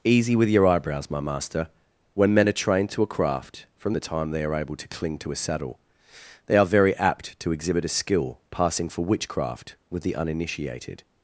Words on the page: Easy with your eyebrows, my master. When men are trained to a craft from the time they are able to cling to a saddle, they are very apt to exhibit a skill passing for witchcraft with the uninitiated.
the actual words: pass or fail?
pass